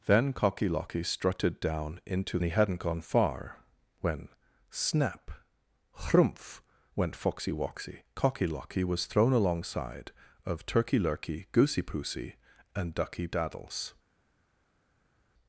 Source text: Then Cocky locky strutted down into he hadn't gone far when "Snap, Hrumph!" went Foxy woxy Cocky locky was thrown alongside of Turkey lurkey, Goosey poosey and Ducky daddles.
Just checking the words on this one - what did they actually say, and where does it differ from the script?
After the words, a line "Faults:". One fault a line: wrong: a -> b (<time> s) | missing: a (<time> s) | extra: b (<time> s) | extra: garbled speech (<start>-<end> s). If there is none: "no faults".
Then Cocky locky strutted down into he hadn't gone far when "Snap, Hrumph!" went Foxy woxy Cocky locky was thrown alongside of Turkey lurkey, Goosey poosey and Ducky daddles.
Faults:
no faults